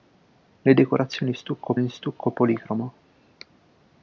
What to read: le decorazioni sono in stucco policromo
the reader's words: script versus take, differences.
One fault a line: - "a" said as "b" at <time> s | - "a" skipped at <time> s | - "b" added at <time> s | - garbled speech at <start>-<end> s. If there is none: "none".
- "sono" said as "stucco" at 1.3 s